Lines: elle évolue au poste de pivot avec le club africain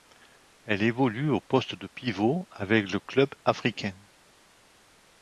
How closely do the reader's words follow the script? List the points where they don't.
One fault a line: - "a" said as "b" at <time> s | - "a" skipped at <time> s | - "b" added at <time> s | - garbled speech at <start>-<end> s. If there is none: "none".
none